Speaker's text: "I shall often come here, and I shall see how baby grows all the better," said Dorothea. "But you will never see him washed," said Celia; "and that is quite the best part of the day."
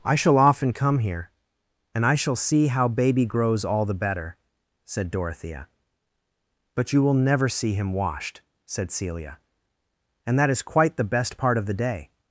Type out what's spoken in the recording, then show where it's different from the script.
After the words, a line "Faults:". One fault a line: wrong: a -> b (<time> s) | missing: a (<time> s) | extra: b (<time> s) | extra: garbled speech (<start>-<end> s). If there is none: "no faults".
"I shall often come here, and I shall see how baby grows all the better," said Dorothea. "But you will never see him washed," said Celia; "and that is quite the best part of the day."
Faults:
no faults